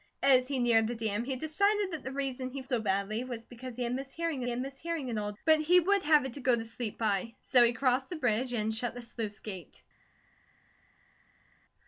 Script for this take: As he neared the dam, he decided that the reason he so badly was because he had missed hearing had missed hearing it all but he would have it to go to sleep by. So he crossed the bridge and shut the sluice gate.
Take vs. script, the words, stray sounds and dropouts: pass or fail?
pass